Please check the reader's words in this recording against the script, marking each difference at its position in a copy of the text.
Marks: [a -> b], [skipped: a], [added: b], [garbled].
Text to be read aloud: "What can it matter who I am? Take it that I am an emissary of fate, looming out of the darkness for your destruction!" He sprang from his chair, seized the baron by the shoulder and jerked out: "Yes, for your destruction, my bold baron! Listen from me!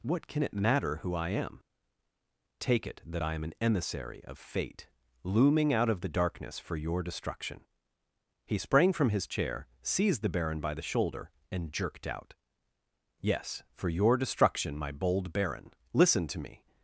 "What can it matter who I am? Take it that I am an emissary of fate, looming out of the darkness for your destruction!" He sprang from his chair, seized the baron by the shoulder and jerked out: "Yes, for your destruction, my bold baron! Listen [from -> to] me!